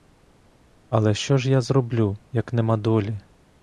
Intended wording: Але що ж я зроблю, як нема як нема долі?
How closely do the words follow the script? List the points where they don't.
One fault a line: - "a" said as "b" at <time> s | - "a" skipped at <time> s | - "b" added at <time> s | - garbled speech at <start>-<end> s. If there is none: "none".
- "як нема" skipped at 2.8 s